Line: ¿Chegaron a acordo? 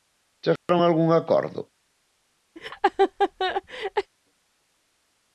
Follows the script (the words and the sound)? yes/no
no